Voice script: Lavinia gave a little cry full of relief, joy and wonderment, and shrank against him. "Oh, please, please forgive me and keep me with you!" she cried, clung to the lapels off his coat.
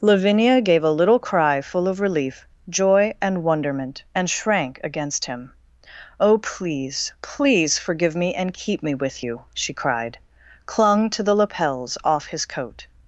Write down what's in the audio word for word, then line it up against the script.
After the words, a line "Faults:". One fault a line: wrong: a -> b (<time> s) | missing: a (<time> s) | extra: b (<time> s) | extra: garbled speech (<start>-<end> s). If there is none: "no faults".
Lavinia gave a little cry full of relief, joy and wonderment, and shrank against him. "Oh, please, please forgive me and keep me with you!" she cried, clung to the lapels off his coat.
Faults:
no faults